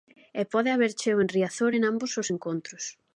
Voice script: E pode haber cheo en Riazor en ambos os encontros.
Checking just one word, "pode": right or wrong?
right